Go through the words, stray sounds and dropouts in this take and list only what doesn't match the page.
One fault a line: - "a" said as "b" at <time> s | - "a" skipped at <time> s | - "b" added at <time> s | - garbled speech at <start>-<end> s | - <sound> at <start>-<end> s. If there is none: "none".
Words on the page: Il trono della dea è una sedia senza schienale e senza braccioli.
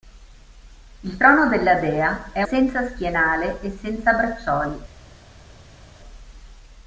- "una sedia" skipped at 2.4 s